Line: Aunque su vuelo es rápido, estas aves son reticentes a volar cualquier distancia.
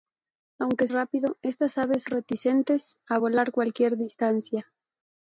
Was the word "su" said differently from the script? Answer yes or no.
yes